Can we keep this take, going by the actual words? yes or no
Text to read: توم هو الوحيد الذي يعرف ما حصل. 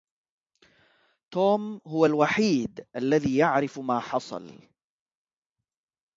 yes